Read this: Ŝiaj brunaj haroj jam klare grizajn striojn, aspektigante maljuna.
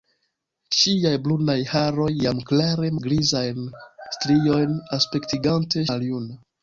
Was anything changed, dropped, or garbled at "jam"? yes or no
no